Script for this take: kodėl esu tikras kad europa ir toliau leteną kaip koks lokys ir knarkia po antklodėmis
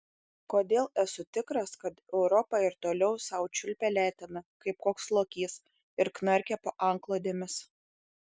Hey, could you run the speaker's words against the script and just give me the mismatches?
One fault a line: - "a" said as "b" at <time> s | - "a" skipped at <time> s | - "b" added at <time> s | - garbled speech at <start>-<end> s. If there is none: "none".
- "sau čiulpia" added at 3.2 s